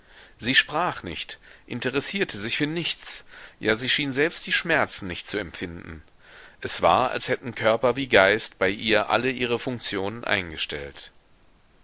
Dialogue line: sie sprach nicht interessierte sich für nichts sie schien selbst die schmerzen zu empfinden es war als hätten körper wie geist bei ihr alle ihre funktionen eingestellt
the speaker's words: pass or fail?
fail